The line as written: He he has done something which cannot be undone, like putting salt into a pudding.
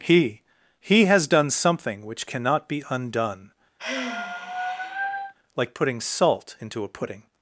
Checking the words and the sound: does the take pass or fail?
fail